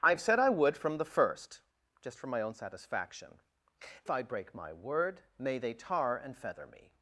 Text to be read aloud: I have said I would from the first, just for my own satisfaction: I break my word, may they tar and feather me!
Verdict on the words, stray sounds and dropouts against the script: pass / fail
pass